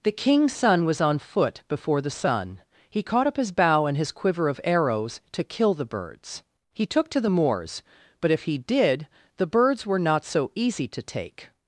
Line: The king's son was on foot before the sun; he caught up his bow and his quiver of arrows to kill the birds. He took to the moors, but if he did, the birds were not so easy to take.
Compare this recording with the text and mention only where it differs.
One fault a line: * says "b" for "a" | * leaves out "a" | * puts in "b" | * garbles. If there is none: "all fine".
all fine